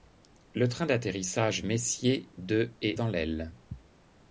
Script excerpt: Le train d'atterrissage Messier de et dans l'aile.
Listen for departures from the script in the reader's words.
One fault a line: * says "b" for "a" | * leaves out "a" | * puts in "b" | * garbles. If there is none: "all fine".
all fine